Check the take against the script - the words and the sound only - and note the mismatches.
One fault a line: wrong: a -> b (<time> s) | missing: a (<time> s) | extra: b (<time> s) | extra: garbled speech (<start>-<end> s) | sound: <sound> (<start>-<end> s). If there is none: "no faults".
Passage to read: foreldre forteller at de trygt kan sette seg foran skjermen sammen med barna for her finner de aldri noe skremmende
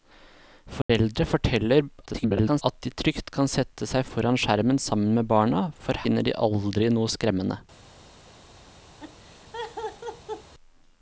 sound: dropout (0.8-0.9 s)
extra: garbled speech (2.0-2.6 s)
missing: her (6.0 s)
sound: laugh (9.0-10.5 s)